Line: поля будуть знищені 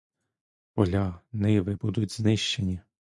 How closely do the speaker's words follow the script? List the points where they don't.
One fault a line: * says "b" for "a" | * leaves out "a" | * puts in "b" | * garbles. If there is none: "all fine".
* puts in "ниви"